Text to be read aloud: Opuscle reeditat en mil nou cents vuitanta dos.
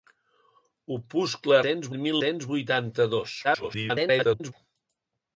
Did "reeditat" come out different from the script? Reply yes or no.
yes